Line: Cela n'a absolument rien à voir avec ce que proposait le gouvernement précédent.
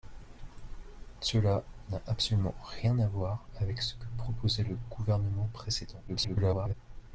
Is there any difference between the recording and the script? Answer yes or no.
yes